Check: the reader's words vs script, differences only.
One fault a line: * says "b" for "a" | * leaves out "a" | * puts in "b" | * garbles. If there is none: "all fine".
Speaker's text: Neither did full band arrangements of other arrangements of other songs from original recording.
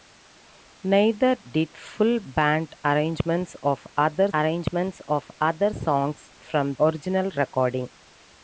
all fine